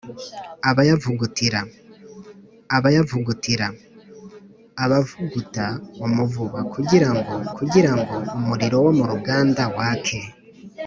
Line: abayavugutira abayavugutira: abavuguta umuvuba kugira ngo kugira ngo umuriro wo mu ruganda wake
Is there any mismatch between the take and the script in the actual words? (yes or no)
no